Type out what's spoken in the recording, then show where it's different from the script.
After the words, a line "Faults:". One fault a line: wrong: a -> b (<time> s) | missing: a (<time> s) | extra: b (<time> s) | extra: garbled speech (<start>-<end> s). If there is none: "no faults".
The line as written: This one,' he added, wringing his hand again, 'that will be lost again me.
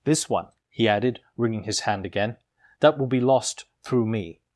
This one,' he added, wringing his hand again, 'that will be lost through me.
Faults:
wrong: again -> through (3.8 s)